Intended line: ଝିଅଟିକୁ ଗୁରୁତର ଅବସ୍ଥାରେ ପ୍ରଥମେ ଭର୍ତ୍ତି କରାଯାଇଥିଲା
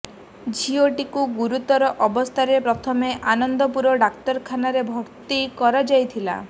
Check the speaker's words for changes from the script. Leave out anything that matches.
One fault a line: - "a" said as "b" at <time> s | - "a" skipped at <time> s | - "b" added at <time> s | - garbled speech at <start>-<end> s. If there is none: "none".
- "ଆନନ୍ଦପୁର ଡାକ୍ତରଖାନାରେ" added at 3.3 s